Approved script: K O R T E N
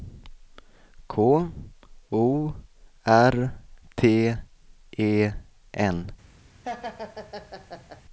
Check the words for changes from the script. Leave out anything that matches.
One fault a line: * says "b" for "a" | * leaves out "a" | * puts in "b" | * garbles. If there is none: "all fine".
all fine